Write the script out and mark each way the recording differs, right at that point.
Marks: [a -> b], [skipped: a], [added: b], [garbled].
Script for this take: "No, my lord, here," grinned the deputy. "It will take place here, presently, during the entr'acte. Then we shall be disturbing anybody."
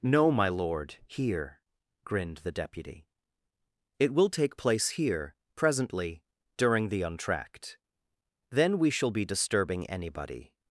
"No, my lord, here," grinned the deputy. "It will take place here, presently, during the entr'acte. Then we shall be disturbing anybody."